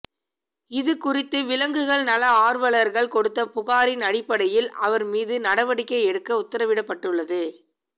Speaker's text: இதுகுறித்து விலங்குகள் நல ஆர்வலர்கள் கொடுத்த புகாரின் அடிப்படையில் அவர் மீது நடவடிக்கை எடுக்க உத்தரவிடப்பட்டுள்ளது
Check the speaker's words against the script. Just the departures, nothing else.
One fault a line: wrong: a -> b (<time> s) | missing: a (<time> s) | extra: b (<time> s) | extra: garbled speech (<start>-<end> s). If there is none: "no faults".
no faults